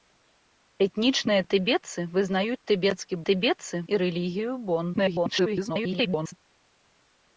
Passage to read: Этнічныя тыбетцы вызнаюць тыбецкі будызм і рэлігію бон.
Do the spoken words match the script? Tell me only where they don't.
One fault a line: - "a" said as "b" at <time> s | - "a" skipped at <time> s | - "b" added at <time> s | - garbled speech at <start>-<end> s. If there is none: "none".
- "будызм" said as "тыбетцы" at 3.3 s
- garbled speech at 4.9-6.3 s